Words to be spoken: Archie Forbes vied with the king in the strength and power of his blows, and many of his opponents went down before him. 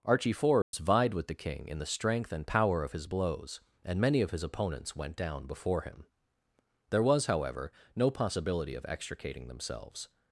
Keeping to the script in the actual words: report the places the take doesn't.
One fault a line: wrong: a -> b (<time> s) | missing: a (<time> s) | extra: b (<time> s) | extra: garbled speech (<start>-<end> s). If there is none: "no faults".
extra: There was however no possibility of extricating themselves (6.9 s)